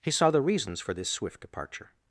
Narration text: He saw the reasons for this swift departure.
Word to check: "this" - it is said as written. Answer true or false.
true